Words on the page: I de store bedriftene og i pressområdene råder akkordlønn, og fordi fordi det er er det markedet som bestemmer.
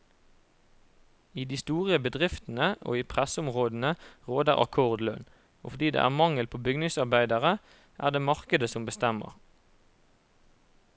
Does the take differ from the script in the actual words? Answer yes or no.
yes